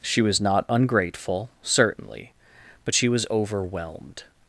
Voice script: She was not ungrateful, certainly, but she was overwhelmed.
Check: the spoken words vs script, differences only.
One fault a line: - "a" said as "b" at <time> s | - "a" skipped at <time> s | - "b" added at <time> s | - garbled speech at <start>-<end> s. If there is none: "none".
none